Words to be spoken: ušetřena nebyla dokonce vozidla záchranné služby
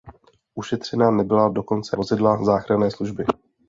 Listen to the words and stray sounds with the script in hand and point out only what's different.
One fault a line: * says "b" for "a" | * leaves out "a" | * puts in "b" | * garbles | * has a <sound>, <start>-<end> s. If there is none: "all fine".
all fine